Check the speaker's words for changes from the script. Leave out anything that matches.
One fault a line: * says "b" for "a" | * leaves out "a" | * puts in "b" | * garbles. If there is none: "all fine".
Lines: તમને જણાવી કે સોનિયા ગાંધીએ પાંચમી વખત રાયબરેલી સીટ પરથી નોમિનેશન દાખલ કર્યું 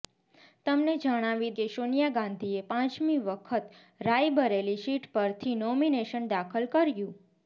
all fine